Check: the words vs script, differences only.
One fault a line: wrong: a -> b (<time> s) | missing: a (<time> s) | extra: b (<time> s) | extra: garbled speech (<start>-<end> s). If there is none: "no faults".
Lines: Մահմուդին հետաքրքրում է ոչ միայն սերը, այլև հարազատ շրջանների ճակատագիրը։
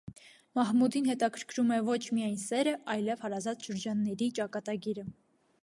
no faults